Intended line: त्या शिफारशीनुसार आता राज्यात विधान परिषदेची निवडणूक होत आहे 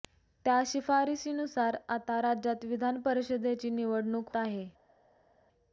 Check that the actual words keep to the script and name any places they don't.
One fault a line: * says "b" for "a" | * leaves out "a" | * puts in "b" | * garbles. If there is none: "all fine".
* leaves out "होत"